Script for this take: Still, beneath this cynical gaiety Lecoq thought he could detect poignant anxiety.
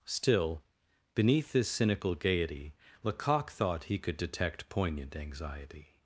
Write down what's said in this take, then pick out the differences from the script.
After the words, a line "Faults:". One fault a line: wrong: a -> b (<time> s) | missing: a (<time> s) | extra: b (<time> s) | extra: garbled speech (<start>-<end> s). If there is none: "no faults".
Still, beneath this cynical gaiety Lecoq thought he could detect poignant anxiety.
Faults:
no faults